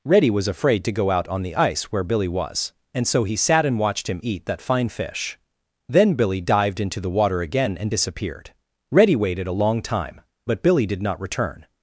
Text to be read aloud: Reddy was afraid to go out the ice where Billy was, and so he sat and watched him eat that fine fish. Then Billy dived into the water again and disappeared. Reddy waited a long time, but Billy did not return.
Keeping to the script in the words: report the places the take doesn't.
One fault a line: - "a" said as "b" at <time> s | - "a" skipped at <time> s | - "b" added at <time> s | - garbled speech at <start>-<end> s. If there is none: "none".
- "on" added at 1.3 s